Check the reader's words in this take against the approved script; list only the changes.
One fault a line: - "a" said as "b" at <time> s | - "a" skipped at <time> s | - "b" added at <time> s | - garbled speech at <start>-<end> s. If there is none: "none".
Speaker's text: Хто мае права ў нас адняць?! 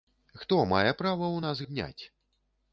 none